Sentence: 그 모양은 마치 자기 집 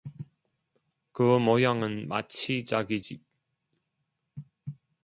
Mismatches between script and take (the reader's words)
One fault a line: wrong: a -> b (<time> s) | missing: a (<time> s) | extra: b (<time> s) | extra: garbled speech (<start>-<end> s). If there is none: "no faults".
no faults